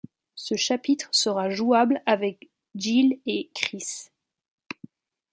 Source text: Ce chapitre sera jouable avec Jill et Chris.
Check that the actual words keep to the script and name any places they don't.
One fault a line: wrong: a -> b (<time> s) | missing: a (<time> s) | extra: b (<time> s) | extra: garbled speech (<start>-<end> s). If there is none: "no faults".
no faults